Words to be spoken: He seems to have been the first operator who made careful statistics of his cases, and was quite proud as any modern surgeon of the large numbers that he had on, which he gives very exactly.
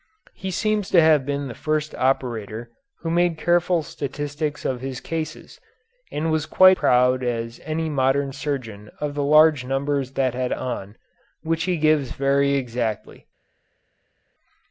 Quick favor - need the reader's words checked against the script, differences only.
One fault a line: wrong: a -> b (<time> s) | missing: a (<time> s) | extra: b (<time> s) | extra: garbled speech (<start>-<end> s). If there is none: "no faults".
no faults